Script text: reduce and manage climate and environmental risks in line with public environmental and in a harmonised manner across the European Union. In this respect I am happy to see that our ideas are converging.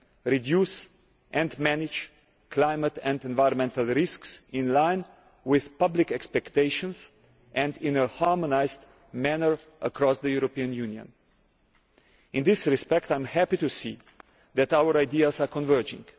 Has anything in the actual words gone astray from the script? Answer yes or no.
yes